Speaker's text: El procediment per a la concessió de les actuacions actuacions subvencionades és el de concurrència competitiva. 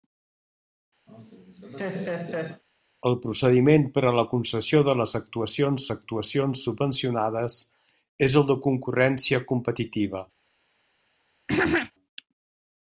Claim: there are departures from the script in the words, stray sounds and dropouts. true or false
true